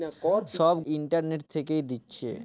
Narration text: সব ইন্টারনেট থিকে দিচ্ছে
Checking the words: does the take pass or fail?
pass